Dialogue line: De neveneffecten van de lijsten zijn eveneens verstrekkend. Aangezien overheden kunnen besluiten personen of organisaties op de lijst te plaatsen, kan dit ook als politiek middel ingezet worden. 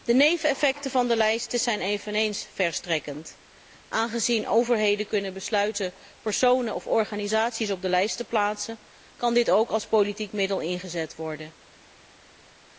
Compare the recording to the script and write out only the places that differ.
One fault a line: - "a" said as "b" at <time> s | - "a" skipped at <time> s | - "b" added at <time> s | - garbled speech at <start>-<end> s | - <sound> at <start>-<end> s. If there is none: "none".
none